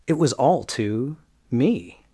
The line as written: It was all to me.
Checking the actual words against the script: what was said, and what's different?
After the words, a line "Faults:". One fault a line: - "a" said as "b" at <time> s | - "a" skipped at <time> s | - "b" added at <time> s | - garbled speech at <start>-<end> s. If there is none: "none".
It was all to me.
Faults:
none